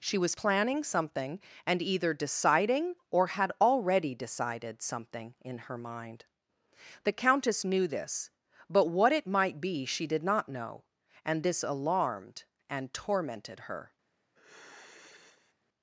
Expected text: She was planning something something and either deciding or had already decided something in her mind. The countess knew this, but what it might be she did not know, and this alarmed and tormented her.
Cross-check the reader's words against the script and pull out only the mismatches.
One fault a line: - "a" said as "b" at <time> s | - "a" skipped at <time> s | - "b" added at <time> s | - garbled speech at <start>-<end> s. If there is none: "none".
- "something" skipped at 1.4 s